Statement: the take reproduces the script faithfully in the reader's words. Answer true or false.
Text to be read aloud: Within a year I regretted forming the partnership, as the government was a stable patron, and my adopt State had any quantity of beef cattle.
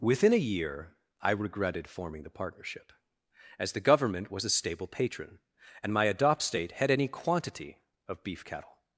true